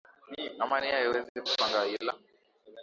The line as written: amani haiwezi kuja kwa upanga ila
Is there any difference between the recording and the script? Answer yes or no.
yes